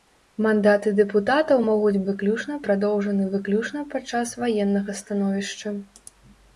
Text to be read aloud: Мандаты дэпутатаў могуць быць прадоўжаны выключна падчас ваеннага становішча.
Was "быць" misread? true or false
true